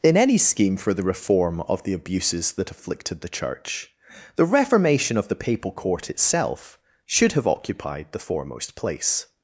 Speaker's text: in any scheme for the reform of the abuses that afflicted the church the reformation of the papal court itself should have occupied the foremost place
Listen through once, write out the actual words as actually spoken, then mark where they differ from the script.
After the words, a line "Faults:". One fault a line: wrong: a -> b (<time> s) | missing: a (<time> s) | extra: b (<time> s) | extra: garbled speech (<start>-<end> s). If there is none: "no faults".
in any scheme for the reform of the abuses that afflicted the church the reformation of the papal court itself should have occupied the foremost place
Faults:
no faults